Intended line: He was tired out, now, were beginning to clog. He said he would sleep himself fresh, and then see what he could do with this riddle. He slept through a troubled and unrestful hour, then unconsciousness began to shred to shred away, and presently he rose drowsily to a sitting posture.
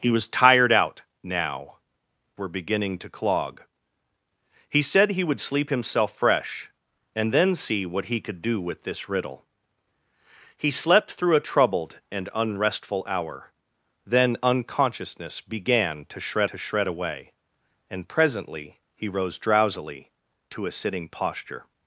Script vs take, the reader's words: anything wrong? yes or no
no